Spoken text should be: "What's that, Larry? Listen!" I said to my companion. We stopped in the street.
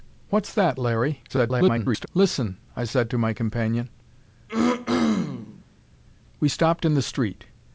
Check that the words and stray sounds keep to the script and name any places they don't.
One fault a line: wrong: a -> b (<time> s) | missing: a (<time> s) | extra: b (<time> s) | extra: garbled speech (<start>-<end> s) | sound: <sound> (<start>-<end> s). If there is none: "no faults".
extra: garbled speech (1.3-2.1 s)
sound: throat clearing (4.5-5.6 s)